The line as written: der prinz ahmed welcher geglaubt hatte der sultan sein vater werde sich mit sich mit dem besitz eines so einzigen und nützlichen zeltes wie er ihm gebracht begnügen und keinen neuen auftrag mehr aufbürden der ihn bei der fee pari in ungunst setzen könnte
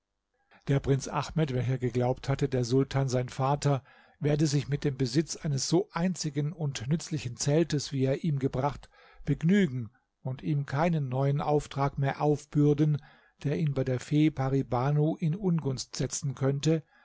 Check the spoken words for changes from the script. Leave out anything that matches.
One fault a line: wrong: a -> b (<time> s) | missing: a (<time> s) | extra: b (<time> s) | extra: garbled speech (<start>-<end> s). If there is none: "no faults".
missing: sich mit (4.8 s)
extra: ihm (10.4 s)
extra: banu (14.6 s)